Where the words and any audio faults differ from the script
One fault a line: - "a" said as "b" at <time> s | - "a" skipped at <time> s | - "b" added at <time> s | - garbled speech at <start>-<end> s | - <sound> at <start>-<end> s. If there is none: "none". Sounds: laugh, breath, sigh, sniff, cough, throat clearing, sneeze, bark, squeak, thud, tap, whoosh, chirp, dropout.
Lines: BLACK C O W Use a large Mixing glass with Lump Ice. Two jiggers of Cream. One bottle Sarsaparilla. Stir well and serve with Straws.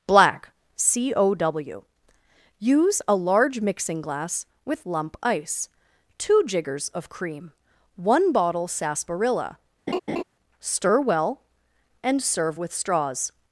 - laugh at 9.9-10.2 s